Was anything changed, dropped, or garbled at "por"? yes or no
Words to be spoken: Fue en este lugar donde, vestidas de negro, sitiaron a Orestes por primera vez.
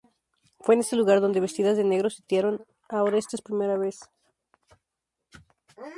yes